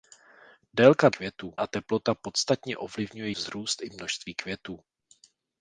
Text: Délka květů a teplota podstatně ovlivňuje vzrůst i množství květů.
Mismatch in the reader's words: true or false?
false